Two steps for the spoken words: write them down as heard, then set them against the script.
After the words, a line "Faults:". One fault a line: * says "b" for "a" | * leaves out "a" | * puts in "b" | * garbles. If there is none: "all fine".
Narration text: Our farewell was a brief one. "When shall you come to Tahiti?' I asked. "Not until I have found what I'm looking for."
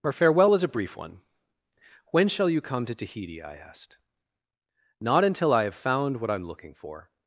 Our farewell was a brief one. "When shall you come to Tahiti?' I asked. "Not until I have found what I'm looking for."
Faults:
all fine